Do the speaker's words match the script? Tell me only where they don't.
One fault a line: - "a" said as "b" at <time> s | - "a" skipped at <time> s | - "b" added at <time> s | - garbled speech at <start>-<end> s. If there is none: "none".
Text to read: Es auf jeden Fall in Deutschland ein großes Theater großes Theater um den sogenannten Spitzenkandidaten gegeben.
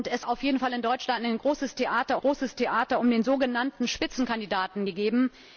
none